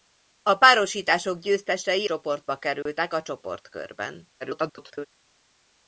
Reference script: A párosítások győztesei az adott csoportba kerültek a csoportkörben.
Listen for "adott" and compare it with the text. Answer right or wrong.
wrong